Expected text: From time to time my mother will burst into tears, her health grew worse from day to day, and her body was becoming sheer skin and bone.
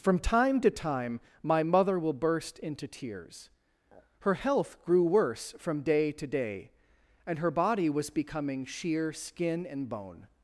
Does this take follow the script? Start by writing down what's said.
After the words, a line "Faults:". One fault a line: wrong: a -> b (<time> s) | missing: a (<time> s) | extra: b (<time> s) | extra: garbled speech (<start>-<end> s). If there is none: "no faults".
From time to time my mother will burst into tears, her health grew worse from day to day, and her body was becoming sheer skin and bone.
Faults:
no faults